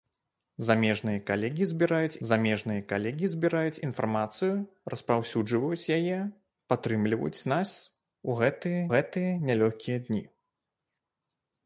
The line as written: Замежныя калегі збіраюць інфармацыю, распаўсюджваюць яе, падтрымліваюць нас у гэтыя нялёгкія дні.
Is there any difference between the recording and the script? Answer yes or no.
yes